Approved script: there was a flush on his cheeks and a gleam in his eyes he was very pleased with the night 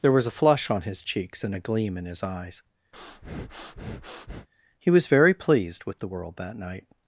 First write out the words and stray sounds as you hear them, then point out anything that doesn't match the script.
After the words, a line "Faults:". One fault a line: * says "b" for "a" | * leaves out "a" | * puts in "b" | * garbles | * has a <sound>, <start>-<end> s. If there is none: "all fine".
there was a flush on his cheeks and a gleam in his eyes he was very pleased with the world that night
Faults:
* has a breath, 2.9-4.5 s
* puts in "world that"